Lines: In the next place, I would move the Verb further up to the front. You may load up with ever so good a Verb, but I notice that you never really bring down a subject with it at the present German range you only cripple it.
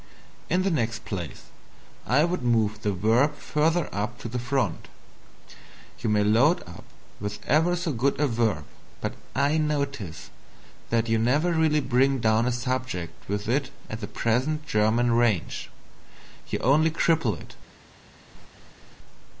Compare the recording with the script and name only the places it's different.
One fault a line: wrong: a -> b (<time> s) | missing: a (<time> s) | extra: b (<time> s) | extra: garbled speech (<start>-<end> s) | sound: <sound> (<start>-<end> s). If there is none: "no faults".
sound: laugh (18.3-19.0 s)